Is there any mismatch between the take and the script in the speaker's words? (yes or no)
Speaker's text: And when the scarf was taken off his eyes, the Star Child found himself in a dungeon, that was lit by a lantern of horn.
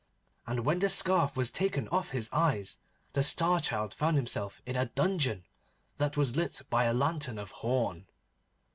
no